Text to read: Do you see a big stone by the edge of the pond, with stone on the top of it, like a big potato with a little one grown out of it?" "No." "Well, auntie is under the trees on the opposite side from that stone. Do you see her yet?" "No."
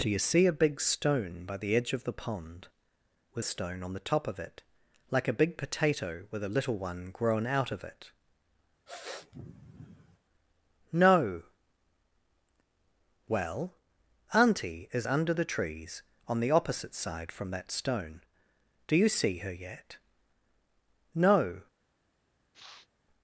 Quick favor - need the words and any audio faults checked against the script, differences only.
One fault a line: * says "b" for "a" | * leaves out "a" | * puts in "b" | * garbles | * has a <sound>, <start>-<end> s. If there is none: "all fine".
* has a sniff, 8.9-10.2 s
* has a sniff, 22.5-22.9 s